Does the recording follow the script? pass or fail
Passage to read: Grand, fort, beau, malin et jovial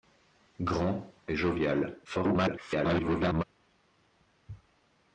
fail